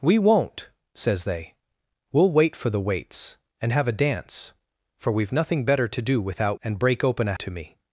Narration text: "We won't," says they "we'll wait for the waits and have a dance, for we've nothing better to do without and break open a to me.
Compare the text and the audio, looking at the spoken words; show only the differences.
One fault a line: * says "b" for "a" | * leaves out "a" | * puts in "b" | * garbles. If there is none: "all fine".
all fine